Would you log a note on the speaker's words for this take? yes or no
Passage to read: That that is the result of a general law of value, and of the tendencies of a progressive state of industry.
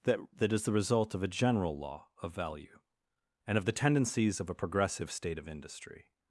no